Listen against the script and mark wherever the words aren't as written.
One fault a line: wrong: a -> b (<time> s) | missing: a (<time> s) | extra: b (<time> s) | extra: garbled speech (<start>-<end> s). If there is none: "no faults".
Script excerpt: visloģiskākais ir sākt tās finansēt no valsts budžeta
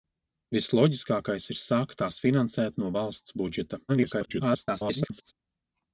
extra: garbled speech (3.9-5.3 s)